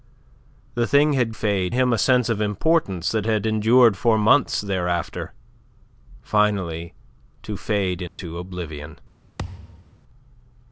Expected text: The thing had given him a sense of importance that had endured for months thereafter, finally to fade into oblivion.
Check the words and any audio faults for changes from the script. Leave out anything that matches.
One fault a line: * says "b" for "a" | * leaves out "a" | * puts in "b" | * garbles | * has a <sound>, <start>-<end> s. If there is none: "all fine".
* says "fade" for "given"
* has a dropout, 8.1-8.2 s
* has a thud, 9.4-10.0 s